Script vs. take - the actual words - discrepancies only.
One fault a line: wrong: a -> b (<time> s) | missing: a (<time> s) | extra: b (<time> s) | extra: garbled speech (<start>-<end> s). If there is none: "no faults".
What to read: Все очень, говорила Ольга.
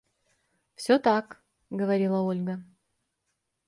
wrong: очень -> так (0.9 s)